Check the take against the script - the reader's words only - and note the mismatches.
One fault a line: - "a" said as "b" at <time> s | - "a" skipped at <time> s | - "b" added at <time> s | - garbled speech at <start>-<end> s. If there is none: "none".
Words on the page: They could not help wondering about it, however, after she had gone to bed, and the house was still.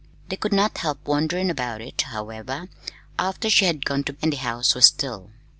- "bed" skipped at 4.1 s